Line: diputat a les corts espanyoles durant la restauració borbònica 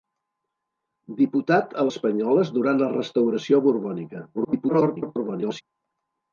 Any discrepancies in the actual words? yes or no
yes